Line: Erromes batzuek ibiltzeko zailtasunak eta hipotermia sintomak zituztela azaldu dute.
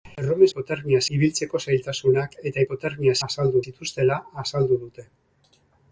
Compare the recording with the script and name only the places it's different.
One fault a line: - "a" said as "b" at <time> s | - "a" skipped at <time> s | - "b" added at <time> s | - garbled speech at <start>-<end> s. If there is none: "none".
- "batzuek" said as "hipotermia" at 0.5 s
- "sintomak" said as "azaldu" at 3.3 s